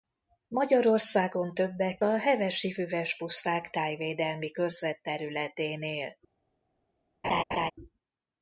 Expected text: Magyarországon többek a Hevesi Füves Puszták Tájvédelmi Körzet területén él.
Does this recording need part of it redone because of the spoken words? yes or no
no